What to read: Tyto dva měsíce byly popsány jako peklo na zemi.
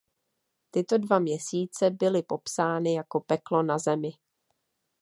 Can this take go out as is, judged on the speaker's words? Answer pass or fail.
pass